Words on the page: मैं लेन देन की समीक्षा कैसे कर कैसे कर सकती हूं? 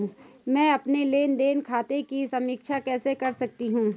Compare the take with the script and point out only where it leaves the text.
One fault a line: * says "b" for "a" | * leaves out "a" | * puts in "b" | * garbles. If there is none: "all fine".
* puts in "अपने"
* puts in "खाते"
* leaves out "कैसे कर"